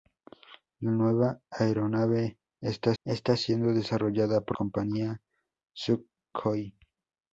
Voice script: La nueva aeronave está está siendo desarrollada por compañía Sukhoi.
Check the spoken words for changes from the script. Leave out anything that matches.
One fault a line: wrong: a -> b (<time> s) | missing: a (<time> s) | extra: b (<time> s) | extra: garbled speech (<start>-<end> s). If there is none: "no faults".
no faults